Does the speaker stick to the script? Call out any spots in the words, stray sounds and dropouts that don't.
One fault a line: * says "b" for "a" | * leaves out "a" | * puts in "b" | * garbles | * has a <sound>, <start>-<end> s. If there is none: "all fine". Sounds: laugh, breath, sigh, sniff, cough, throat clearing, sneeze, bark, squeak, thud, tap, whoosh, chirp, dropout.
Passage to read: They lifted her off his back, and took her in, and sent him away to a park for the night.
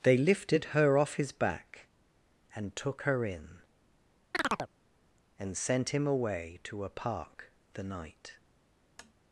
* has a chirp, 4.3-4.7 s
* leaves out "for"
* has a tap, 9.0-9.1 s